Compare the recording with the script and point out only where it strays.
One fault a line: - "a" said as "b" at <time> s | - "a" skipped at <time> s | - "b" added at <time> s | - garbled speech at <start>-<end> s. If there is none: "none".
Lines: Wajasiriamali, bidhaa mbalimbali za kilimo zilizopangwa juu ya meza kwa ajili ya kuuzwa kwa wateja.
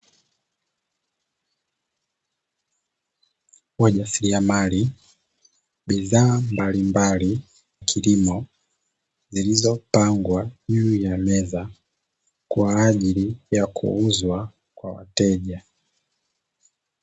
- "za" skipped at 7.4 s